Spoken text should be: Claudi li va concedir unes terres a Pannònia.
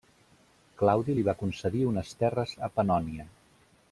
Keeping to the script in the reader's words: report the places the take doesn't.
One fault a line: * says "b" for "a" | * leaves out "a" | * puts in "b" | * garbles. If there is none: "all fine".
all fine